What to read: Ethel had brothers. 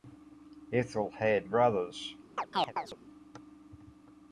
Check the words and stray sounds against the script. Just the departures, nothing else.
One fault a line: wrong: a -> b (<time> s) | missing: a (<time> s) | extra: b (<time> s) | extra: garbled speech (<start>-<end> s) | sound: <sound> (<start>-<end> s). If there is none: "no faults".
sound: chirp (2.4-3.0 s)